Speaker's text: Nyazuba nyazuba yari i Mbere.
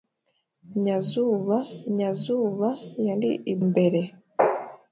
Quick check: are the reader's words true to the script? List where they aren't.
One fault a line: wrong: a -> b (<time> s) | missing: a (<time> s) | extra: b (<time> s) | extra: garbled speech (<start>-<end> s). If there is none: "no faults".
no faults